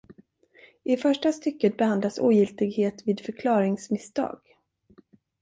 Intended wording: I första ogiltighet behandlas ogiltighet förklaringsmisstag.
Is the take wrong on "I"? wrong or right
right